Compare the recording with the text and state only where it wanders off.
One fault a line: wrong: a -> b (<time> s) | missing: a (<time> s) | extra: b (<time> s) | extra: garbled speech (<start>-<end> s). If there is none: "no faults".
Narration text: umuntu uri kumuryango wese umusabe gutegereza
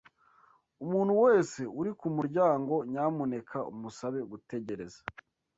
extra: wese (1.2 s)
wrong: wese -> nyamuneka (2.9 s)